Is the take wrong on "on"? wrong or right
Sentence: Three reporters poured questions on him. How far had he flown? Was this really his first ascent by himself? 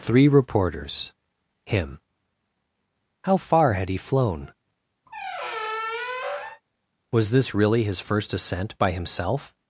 wrong